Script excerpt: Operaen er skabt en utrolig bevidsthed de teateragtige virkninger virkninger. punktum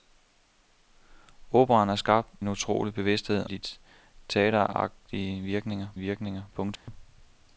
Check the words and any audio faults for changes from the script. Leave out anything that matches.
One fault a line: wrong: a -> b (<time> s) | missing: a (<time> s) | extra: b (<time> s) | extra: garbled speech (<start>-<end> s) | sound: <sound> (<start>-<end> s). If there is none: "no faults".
sound: dropout (6.8-6.9 s)